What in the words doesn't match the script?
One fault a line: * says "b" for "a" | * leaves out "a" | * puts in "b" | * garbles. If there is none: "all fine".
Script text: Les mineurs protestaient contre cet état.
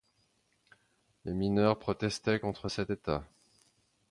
all fine